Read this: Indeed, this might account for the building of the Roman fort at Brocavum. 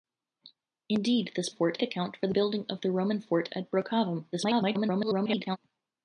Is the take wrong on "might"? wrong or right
wrong